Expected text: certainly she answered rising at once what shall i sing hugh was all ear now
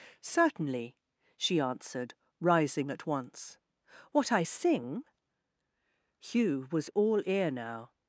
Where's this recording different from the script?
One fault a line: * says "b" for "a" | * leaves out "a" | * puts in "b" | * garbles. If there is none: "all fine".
* leaves out "shall"